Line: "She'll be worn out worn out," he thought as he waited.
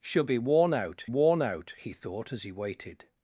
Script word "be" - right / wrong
right